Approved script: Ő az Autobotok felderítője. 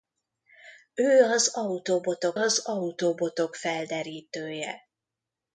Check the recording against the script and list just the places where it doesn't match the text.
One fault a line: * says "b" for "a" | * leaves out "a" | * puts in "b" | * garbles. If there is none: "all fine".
* puts in "az Autobotok"